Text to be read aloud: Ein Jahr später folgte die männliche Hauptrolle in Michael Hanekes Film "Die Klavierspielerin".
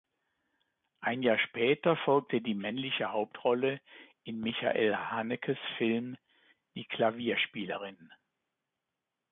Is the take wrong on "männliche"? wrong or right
right